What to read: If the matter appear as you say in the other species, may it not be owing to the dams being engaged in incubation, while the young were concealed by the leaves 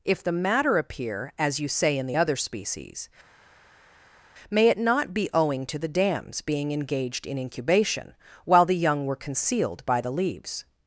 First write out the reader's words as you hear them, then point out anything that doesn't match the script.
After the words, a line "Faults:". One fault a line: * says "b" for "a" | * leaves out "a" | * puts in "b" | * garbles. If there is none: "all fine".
If the matter appear as you say in the other species, may it not be owing to the dams being engaged in incubation, while the young were concealed by the leaves
Faults:
all fine